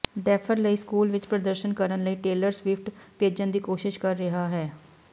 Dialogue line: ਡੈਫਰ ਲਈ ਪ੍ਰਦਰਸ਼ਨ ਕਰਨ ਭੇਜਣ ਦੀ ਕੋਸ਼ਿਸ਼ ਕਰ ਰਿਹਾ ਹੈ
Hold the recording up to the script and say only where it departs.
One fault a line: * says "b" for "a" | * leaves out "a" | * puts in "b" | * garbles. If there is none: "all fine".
* puts in "ਸਕੂਲ ਵਿਚ"
* puts in "ਲਈ ਟੇਲਰ ਸਵਿਫਟ"